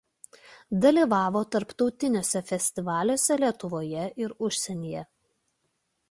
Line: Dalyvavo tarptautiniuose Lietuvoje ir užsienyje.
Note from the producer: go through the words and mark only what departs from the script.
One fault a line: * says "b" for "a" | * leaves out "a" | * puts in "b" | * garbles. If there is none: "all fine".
* puts in "festivaliuose"